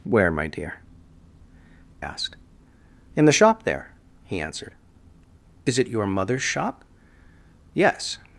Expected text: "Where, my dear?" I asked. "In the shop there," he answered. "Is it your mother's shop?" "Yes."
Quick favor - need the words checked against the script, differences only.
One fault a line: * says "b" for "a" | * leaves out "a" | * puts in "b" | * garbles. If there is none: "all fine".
* leaves out "I"